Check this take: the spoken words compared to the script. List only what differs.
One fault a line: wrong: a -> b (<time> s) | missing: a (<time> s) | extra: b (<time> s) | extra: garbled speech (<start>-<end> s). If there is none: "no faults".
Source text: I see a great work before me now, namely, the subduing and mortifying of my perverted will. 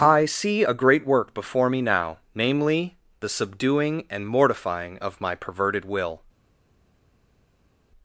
no faults